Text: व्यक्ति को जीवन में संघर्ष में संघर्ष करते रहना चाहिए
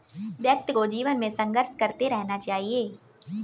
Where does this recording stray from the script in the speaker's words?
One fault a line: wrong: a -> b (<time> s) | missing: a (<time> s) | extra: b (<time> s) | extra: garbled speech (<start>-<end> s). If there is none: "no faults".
missing: में संघर्ष (1.8 s)